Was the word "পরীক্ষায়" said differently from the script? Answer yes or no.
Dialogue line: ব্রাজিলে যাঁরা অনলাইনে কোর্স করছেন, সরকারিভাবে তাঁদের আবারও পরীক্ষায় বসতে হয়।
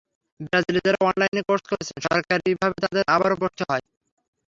yes